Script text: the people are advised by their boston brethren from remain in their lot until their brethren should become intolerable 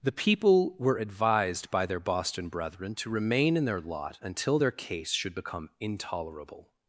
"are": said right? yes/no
no